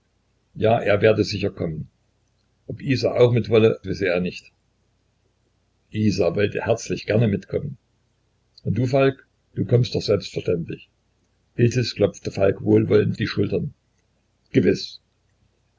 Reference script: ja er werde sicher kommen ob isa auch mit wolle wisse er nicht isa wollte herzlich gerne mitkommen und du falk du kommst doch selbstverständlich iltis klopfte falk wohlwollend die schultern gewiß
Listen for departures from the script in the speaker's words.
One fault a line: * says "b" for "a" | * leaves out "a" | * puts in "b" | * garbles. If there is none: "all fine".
all fine